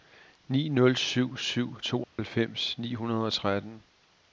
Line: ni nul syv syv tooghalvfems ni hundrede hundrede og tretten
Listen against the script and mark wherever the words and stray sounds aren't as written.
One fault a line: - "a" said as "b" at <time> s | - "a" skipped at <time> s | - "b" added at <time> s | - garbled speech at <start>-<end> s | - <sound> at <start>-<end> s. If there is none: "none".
- dropout at 2.0-2.2 s
- "hundrede" skipped at 3.3 s